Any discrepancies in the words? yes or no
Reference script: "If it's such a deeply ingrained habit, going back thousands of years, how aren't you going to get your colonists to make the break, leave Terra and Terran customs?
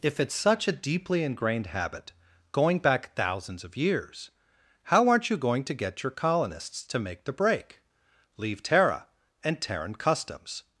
no